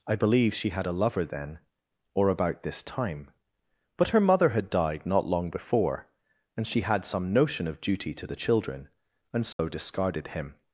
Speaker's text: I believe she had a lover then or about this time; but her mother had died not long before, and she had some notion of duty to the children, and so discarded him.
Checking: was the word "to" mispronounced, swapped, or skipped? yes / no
no